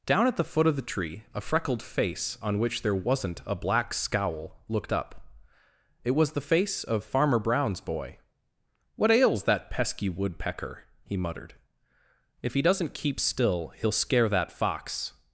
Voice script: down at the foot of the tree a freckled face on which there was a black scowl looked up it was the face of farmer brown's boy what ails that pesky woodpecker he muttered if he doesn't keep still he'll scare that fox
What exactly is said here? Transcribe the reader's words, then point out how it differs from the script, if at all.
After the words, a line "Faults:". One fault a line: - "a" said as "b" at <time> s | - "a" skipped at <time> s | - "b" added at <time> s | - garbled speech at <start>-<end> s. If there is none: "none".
down at the foot of the tree a freckled face on which there wasn't a black scowl looked up it was the face of farmer brown's boy what ails that pesky woodpecker he muttered if he doesn't keep still he'll scare that fox
Faults:
- "was" said as "wasn't" at 3.0 s